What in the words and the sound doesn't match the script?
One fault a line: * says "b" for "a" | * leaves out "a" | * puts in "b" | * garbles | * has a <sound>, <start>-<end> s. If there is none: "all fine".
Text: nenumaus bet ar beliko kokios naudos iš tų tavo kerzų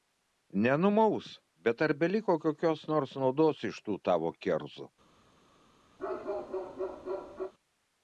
* puts in "nors"
* has a bark, 6.0-7.5 s